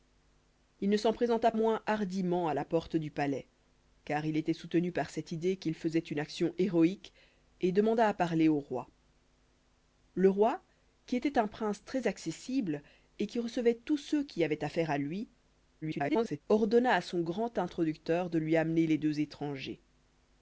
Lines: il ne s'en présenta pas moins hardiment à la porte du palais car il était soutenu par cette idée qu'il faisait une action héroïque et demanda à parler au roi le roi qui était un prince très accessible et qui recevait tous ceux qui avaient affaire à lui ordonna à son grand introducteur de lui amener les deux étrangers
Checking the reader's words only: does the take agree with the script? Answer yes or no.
no